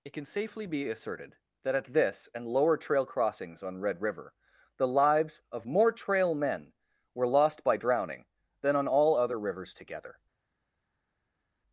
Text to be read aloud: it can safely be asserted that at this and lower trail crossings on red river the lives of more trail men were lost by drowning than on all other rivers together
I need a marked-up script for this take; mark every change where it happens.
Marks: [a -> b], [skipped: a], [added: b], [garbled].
it can safely be asserted that at this and lower trail crossings on red river the lives of more trail men were lost by drowning than on all other rivers together